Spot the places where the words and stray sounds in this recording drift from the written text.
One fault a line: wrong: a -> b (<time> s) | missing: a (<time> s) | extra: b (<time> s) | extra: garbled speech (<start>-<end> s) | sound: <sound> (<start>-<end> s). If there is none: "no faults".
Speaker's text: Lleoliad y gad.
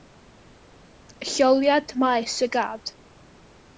extra: maes (1.9 s)